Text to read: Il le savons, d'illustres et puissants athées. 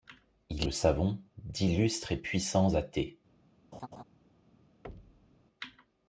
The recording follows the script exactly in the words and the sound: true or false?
false